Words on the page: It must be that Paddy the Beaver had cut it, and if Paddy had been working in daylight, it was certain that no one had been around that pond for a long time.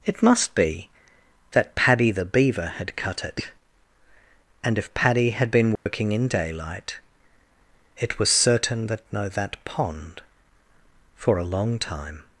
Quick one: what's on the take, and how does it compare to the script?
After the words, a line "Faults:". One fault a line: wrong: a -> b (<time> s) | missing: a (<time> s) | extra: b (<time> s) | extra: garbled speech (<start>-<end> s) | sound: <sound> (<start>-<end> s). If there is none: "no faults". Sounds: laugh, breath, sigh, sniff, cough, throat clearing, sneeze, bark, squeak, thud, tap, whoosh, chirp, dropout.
It must be that Paddy the Beaver had cut it, and if Paddy had been working in daylight, it was certain that no that pond for a long time.
Faults:
sound: dropout (5.8-5.9 s)
missing: one had been around (9.3 s)